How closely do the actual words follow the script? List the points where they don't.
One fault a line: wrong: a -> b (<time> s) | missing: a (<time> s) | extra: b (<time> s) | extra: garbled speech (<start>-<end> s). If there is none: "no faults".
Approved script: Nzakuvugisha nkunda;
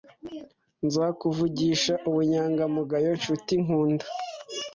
extra: ubunyangamugayo nshuti (2.1 s)